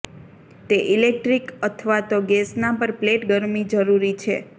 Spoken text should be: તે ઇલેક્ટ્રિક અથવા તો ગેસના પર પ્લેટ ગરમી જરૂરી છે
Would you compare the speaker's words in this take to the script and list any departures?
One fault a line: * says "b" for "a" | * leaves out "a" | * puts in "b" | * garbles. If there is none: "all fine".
all fine